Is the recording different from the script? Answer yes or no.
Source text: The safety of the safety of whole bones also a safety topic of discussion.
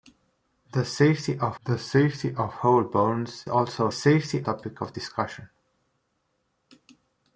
no